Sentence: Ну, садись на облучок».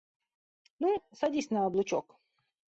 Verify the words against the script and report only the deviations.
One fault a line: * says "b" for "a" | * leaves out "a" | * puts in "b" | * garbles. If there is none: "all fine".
all fine